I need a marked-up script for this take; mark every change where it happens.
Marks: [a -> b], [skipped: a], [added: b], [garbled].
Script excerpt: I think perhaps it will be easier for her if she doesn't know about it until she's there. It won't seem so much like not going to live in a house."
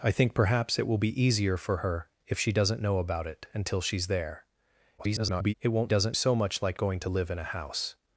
I think perhaps it will be easier for her if she doesn't know about it until she's there. [garbled] It won't [seem -> doesn't] so much like [skipped: not] going to live in a house."